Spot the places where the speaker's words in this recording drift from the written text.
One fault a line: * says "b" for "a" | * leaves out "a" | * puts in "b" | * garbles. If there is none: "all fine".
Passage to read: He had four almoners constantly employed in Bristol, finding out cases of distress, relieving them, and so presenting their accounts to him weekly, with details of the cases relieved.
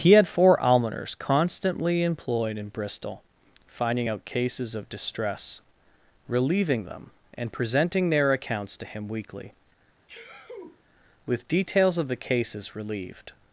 * leaves out "so"